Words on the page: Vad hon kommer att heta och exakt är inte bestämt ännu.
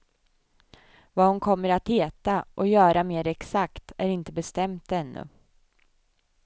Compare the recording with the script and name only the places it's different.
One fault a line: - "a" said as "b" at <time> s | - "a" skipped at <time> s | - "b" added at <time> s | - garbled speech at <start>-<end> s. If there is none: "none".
- "göra mer" added at 2.7 s